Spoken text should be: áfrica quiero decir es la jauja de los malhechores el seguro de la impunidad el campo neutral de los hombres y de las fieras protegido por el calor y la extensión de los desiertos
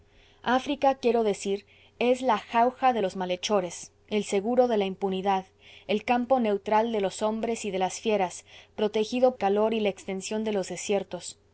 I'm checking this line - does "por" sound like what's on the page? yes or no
no